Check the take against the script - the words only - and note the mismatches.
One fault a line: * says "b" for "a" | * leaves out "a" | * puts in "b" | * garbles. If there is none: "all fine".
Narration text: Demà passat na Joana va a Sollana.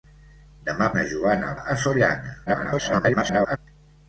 * leaves out "passat"
* leaves out "va"
* garbles